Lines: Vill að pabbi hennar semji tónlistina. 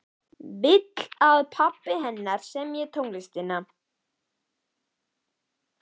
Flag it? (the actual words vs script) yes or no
no